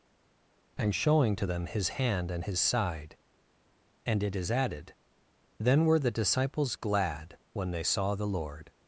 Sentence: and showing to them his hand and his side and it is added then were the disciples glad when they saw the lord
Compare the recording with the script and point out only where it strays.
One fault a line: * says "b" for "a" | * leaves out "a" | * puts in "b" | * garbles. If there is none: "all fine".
all fine